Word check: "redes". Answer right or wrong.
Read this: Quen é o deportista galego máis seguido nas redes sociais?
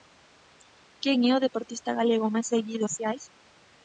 wrong